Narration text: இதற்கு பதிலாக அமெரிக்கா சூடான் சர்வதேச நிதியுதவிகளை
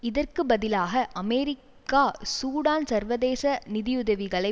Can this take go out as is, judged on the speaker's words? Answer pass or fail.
pass